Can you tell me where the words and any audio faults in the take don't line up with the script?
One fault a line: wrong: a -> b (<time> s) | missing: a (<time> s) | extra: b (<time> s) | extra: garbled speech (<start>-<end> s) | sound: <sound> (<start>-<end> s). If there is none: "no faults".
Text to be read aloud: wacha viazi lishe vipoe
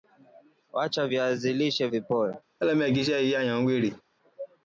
sound: laugh (2.6-4.0 s)